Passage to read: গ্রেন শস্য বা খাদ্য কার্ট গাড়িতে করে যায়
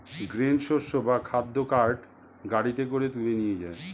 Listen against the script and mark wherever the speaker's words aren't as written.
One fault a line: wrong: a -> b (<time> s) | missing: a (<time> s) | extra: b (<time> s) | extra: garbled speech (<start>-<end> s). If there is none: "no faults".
extra: তুলে নিয়ে (3.1 s)